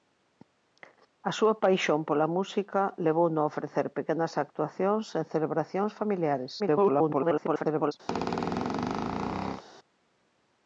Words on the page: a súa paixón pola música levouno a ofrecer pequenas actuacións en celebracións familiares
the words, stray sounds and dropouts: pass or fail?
fail